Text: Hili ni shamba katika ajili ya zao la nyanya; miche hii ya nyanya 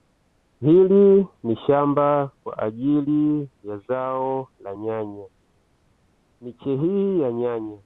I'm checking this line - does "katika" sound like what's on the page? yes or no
no